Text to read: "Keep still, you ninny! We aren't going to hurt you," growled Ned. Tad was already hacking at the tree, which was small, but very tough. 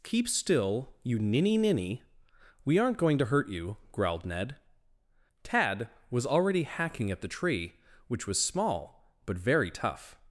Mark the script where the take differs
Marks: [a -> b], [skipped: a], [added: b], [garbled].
"Keep still, you ninny! [added: ninny] We aren't going to hurt you," growled Ned. Tad was already hacking at the tree, which was small, but very tough.